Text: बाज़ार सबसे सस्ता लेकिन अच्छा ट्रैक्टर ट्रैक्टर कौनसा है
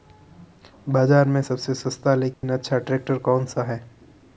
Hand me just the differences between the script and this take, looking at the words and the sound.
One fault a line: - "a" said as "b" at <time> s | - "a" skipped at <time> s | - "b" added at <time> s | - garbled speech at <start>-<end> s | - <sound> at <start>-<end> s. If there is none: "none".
- "में" added at 1.3 s
- dropout at 2.3-2.4 s
- "ट्रैक्टर" skipped at 3.2 s